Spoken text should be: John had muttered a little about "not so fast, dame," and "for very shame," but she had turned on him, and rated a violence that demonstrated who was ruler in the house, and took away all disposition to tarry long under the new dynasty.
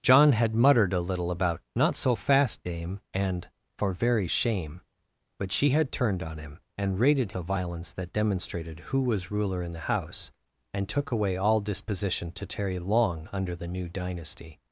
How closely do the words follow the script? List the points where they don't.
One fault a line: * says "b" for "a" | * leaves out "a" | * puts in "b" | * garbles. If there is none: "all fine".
all fine